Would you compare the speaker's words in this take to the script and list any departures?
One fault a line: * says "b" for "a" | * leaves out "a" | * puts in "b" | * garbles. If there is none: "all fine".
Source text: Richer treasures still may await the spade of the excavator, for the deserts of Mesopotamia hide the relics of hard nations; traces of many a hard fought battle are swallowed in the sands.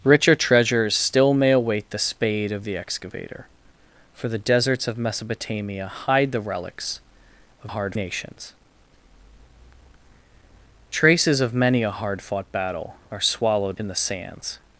all fine